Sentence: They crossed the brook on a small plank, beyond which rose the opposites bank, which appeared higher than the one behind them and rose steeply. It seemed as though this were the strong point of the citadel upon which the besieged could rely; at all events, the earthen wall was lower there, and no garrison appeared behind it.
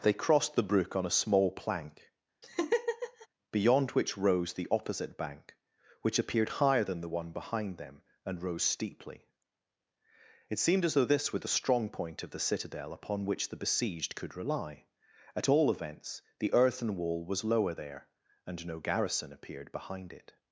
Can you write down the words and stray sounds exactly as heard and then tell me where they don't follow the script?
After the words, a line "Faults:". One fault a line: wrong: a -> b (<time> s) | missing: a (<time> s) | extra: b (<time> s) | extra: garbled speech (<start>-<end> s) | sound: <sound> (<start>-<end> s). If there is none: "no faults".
They crossed the brook on a small plank, beyond which rose the opposite bank, which appeared higher than the one behind them and rose steeply. It seemed as though this were the strong point of the citadel upon which the besieged could rely; at all events, the earthen wall was lower there, and no garrison appeared behind it.
Faults:
sound: laugh (2.4-3.3 s)
wrong: opposites -> opposite (4.7 s)